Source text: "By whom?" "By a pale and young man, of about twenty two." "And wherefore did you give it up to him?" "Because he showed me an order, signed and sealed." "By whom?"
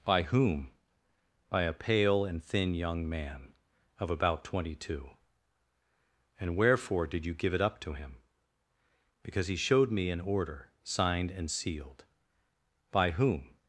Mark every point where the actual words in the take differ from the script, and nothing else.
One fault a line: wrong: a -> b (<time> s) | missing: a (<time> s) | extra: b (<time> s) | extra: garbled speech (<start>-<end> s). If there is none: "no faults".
extra: thin (2.4 s)